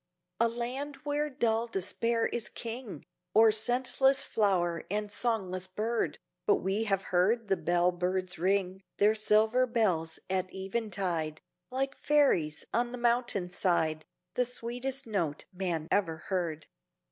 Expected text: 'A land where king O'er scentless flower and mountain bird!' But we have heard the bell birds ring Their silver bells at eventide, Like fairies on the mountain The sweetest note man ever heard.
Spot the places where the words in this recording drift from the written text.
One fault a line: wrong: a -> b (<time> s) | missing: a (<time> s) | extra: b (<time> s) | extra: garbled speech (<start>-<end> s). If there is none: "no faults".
extra: dull Despair is (1.3 s)
wrong: mountain -> songless (5.1 s)
extra: side (13.5 s)